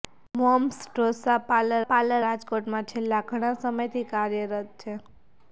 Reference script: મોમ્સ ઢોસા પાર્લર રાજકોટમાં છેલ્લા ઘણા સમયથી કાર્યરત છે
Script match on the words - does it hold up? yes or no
no